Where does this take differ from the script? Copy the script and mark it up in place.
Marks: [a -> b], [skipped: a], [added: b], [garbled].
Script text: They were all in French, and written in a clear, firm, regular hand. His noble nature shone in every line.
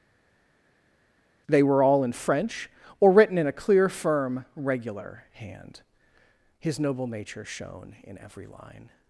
They were all in French, [and -> or] written in a clear, firm, regular hand. His noble nature shone in every line.